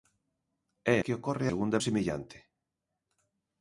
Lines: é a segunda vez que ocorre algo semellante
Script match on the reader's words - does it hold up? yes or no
no